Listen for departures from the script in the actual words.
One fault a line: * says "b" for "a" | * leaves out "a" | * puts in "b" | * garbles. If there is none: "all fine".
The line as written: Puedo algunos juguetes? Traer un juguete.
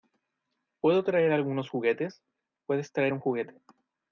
* puts in "traer"
* puts in "Puedes"